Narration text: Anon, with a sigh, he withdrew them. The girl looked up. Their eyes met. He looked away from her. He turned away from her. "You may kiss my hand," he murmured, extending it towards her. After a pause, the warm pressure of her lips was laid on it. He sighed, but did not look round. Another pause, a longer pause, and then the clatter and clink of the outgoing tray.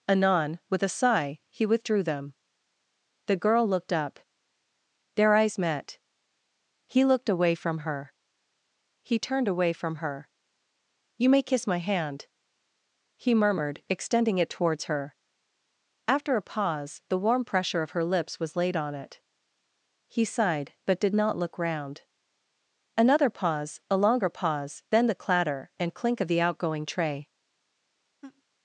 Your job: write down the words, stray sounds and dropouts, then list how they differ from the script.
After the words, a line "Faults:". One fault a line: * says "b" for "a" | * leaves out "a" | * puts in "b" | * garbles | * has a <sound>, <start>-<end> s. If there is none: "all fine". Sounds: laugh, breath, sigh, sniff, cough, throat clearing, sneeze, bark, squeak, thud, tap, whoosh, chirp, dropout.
Anon, with a sigh, he withdrew them. The girl looked up. Their eyes met. He looked away from her. He turned away from her. "You may kiss my hand," he murmured, extending it towards her. After a pause, the warm pressure of her lips was laid on it. He sighed, but did not look round. Another pause, a longer pause, then the clatter and clink of the outgoing tray.
Faults:
* leaves out "and"
* has a laugh, 28.2-28.4 s